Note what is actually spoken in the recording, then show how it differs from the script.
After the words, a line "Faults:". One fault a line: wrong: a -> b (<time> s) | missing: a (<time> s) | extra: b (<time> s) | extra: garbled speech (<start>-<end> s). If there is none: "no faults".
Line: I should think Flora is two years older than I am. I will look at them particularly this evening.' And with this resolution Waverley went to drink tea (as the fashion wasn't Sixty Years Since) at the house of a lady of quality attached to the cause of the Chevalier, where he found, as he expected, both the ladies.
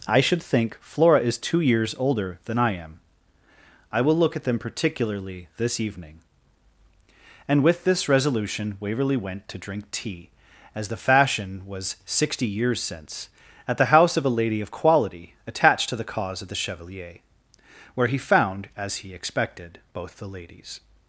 I should think Flora is two years older than I am. I will look at them particularly this evening.' And with this resolution Waverley went to drink tea (as the fashion was Sixty Years Since) at the house of a lady of quality attached to the cause of the Chevalier, where he found, as he expected, both the ladies.
Faults:
wrong: wasn't -> was (11.7 s)